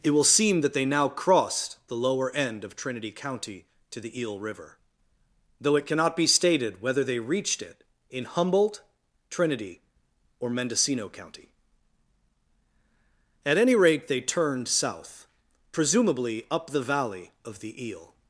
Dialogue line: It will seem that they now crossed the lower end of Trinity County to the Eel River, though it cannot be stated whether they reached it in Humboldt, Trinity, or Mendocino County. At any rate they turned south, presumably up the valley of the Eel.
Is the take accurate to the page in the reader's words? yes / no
yes